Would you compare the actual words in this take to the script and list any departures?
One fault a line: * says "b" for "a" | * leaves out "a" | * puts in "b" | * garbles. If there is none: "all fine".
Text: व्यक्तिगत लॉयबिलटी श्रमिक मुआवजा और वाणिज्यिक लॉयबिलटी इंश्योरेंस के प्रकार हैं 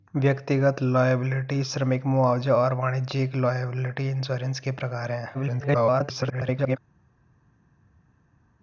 * garbles